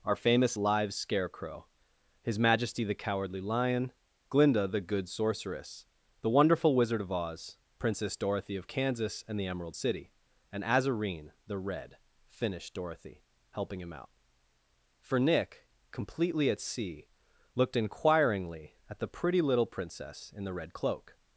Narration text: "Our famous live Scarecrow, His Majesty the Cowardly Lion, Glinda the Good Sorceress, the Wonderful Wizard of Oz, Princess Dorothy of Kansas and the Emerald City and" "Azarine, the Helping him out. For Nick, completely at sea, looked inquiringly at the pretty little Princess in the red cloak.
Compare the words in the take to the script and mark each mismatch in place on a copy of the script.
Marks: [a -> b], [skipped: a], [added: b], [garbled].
"Our famous live Scarecrow, His Majesty the Cowardly Lion, Glinda the Good Sorceress, the Wonderful Wizard of Oz, Princess Dorothy of Kansas and the Emerald City and" "Azarine, the [added: Red finished Dorothy] Helping him out. For Nick, completely at sea, looked inquiringly at the pretty little Princess in the red cloak.